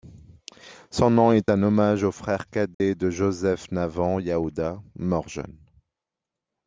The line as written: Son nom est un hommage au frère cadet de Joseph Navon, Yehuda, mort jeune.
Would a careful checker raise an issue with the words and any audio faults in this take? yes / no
yes